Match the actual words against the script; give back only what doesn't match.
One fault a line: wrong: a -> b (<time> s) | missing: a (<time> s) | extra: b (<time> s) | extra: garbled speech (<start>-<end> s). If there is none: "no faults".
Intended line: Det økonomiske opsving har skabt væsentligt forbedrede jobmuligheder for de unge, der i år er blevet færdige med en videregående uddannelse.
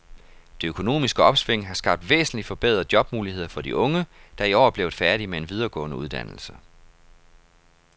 no faults